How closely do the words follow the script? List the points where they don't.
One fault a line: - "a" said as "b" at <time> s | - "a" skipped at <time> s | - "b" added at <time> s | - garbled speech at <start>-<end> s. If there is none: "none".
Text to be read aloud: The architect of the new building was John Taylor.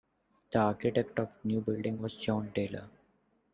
none